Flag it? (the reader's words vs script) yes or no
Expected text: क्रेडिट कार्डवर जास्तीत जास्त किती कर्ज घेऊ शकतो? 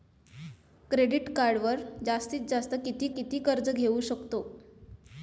yes